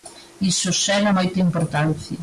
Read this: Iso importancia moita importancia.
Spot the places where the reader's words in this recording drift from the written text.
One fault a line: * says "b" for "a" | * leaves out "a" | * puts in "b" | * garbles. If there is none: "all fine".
* says "xera" for "importancia"